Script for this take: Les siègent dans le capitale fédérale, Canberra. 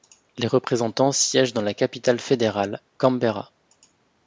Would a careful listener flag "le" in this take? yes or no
yes